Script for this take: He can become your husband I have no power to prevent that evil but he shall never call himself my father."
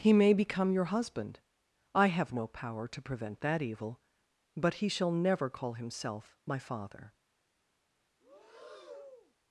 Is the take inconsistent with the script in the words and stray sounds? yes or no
yes